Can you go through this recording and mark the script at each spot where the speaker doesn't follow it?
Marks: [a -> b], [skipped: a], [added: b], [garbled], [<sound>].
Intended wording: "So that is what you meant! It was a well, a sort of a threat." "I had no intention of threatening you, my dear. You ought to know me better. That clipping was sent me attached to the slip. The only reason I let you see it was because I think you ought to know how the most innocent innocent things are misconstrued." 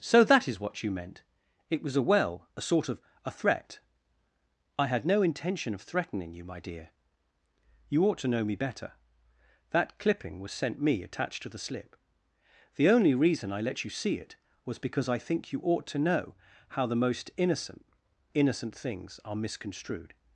"So that is what you meant! It was a well, a sort of a threat." "I had no intention of threatening you, my dear. You ought to know me better. That clipping was sent me attached to the slip. The only reason I let you see it was because I think you ought to know how the most innocent innocent things are misconstrued."